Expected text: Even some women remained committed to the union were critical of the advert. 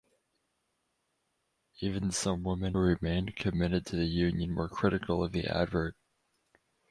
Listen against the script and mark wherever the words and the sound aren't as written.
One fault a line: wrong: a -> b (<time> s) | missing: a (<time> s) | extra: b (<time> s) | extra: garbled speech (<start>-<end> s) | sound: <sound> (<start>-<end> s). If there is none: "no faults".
no faults